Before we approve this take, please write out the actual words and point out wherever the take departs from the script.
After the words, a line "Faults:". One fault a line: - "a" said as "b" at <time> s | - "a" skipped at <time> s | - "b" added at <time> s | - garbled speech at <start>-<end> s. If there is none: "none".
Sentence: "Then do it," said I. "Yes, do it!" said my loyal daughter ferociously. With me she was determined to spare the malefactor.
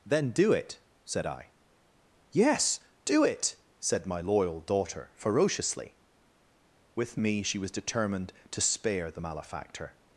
"Then do it," said I. "Yes, do it!" said my loyal daughter ferociously. With me she was determined to spare the malefactor.
Faults:
none